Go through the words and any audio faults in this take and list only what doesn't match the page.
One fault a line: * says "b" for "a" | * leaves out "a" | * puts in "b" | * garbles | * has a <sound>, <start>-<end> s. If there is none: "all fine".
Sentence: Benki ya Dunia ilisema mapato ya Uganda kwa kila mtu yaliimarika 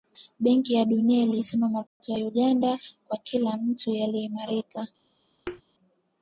* has a dropout, 1.9-2.0 s
* has a thud, 5.5-5.6 s